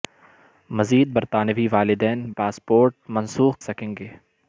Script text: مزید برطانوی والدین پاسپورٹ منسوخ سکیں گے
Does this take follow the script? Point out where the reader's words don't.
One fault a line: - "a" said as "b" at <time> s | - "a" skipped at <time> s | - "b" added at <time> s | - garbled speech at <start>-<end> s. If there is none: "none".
none